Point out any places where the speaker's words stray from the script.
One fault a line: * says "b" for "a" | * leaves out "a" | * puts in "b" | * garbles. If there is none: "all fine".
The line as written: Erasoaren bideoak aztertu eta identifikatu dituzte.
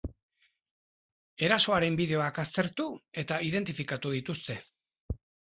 all fine